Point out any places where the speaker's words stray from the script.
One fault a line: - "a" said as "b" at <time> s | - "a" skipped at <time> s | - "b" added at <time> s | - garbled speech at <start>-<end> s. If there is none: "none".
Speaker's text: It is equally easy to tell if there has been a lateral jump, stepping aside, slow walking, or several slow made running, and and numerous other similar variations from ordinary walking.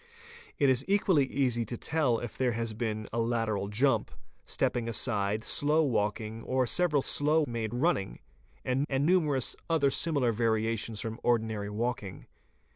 none